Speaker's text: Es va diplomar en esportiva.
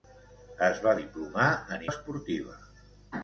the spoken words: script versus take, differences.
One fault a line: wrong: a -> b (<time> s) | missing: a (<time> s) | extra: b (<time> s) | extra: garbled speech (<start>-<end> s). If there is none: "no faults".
no faults